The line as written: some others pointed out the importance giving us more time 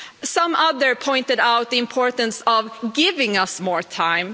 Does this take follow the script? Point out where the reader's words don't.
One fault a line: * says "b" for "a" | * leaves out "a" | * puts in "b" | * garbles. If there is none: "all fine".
* puts in "of"